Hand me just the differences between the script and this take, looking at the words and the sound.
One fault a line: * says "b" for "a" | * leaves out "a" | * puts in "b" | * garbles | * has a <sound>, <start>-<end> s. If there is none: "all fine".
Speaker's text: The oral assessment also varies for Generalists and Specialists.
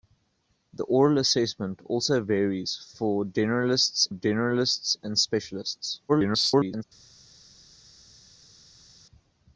* puts in "Generalists"
* garbles